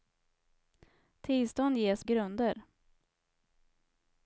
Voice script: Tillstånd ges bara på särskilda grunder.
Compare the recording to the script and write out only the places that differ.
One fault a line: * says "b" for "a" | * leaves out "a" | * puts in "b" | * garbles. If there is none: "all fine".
* leaves out "bara på särskilda"